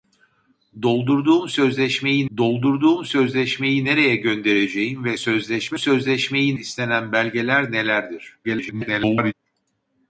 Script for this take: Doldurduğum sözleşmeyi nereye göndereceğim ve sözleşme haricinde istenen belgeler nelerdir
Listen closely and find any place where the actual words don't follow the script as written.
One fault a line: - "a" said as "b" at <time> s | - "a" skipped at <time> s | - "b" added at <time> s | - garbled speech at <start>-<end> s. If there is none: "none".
- "doldurduğum sözleşmeyi" added at 2.4 s
- "haricinde" said as "sözleşmeyi" at 5.8 s
- garbled speech at 8.4-9.3 s